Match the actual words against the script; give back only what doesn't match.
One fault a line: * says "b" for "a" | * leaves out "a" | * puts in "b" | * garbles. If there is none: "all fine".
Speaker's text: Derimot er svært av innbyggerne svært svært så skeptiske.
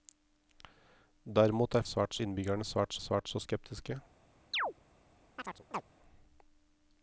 all fine